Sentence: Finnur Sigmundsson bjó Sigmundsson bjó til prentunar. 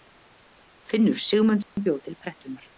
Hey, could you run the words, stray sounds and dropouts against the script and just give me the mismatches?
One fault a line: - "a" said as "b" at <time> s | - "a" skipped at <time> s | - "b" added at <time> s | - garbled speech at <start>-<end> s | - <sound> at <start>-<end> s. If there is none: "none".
- dropout at 1.6-1.8 s
- "Sigmundsson bjó" skipped at 2.0 s